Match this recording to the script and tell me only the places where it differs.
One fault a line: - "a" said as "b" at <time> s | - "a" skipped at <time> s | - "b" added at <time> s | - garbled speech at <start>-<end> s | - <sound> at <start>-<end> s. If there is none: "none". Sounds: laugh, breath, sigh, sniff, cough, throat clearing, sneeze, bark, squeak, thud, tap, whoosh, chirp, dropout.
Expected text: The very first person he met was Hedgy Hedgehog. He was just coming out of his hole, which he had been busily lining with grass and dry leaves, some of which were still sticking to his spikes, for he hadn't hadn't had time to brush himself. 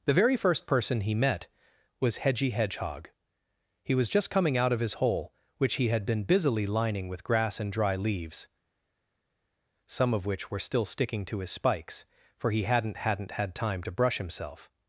none